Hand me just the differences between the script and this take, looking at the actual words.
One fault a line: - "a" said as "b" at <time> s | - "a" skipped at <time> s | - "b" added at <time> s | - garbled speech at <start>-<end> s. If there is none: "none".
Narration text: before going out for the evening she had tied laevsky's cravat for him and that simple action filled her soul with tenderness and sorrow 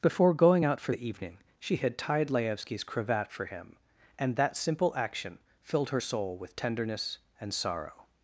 none